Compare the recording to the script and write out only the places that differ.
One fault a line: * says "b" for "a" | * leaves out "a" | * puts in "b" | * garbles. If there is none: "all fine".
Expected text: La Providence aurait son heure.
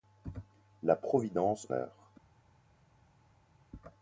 * leaves out "aurait son"